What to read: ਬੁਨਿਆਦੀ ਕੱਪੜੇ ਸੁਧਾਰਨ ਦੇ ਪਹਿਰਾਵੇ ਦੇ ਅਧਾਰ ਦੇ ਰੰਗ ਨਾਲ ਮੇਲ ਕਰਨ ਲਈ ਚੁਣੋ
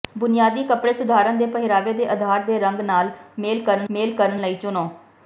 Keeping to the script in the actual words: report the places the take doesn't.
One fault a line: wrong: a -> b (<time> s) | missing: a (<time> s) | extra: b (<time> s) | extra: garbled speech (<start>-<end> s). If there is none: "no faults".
extra: ਮੇਲ ਕਰਨ (3.9 s)